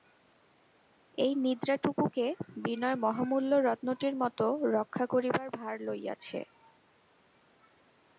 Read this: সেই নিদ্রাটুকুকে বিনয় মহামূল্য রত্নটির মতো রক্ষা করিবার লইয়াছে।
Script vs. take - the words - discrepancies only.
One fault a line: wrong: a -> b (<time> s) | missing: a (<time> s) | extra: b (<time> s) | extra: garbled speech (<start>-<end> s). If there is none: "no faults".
wrong: সেই -> এই (1.2 s)
extra: ভার (5.6 s)